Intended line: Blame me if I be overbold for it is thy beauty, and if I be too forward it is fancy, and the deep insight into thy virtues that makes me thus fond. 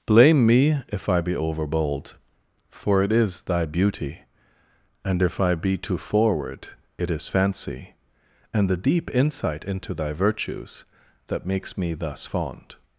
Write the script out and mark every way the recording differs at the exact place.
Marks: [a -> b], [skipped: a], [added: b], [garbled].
Blame me if I be overbold for it is thy beauty, and if I be too forward it is fancy, and the deep insight into thy virtues that makes me thus fond.